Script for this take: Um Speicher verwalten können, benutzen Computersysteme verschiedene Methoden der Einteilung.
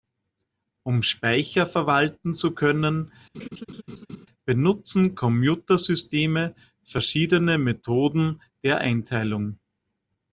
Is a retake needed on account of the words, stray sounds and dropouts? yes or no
yes